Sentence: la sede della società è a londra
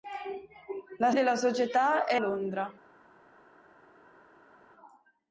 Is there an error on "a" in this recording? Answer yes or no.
yes